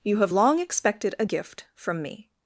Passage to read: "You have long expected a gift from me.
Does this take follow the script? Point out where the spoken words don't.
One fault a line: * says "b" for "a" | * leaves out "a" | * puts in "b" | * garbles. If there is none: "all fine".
all fine